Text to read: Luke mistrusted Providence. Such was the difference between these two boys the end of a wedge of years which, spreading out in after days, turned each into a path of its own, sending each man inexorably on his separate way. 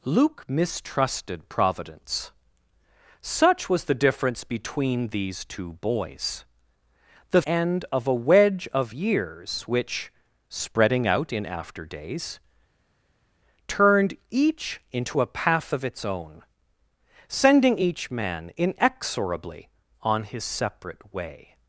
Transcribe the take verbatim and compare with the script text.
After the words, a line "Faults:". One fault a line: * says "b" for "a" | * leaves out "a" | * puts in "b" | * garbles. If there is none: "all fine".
Luke mistrusted Providence. Such was the difference between these two boys the end of a wedge of years which, spreading out in after days, turned each into a path of its own, sending each man inexorably on his separate way.
Faults:
all fine